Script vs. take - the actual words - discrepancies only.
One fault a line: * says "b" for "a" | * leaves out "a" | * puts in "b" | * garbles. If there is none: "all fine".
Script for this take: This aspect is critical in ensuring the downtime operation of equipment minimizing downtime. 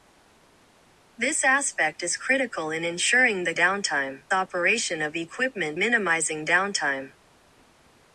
all fine